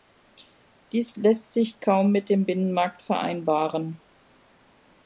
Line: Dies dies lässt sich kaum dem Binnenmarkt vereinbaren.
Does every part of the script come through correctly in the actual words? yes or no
no